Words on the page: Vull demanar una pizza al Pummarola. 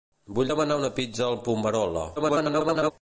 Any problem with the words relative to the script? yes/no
yes